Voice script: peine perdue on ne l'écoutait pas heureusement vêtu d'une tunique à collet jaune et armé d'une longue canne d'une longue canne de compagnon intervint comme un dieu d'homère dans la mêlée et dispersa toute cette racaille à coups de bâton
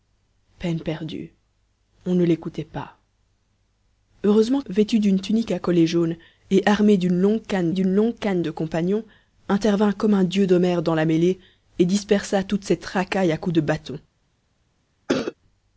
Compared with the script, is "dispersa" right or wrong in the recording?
right